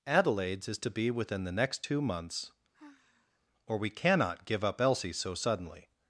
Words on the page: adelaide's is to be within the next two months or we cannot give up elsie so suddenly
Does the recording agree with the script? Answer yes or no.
yes